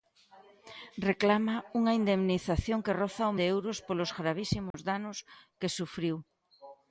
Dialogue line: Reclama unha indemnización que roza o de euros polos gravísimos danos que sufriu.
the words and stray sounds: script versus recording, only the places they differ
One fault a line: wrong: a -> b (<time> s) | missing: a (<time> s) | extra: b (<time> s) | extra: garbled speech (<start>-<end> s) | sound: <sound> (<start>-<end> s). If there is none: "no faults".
sound: dropout (4.7-4.7 s)